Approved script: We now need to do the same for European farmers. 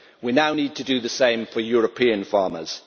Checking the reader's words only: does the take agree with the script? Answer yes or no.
yes